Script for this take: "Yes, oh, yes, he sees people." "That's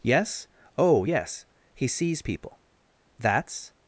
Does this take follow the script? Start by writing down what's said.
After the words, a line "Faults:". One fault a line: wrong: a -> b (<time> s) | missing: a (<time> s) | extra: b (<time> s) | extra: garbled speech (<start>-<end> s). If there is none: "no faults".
"Yes, oh, yes, he sees people." "That's
Faults:
no faults